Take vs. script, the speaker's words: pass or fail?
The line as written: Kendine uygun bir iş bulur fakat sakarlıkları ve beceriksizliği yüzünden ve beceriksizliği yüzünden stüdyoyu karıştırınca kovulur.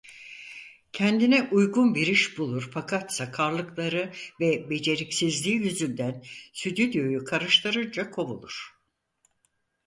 fail